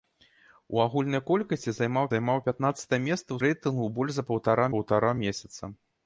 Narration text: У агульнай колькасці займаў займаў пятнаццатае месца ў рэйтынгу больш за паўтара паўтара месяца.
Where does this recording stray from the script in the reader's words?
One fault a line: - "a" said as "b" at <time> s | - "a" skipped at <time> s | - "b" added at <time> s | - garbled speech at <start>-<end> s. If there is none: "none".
none